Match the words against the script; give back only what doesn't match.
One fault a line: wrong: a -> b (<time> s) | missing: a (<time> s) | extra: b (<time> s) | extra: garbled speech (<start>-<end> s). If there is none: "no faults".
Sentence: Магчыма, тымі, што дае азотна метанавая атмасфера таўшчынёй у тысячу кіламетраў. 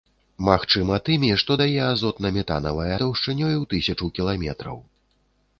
missing: атмасфера (2.9 s)